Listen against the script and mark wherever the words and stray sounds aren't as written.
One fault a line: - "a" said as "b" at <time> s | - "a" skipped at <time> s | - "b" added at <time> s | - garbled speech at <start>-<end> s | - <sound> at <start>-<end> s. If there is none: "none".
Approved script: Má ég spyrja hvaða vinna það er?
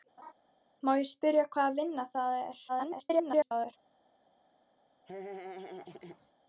- laugh at 0.2-0.3 s
- garbled speech at 2.7-3.7 s
- laugh at 5.1-6.3 s